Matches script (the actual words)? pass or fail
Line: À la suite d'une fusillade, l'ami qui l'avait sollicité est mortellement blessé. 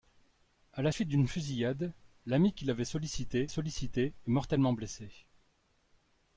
fail